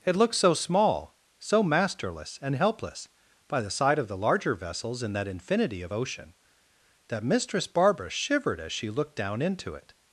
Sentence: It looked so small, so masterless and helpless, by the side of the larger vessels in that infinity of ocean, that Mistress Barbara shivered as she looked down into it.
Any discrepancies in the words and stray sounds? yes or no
no